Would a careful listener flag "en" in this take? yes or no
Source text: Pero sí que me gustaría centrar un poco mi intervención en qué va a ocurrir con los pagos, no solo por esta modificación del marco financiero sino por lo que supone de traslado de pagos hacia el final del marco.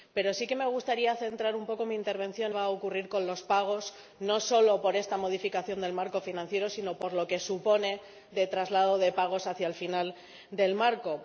yes